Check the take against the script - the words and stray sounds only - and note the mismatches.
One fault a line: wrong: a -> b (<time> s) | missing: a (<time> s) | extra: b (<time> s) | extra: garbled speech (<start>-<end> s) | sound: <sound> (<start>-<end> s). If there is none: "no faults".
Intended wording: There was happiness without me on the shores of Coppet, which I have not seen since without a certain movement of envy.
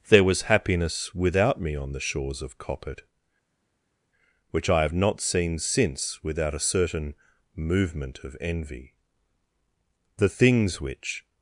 extra: The things which (10.2 s)